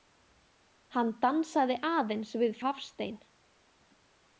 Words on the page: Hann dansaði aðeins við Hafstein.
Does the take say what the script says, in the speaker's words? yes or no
yes